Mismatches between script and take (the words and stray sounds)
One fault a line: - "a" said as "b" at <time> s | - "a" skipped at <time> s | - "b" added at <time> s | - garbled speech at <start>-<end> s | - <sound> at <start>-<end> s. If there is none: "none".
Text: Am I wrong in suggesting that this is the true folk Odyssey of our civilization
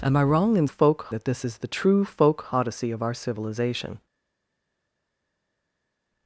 - "suggesting" said as "folk" at 0.6 s